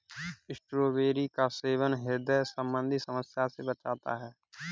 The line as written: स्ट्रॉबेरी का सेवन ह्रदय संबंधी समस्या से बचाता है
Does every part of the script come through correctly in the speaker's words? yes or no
yes